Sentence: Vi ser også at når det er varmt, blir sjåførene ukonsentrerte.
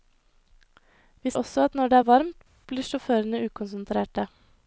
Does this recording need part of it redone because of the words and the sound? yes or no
yes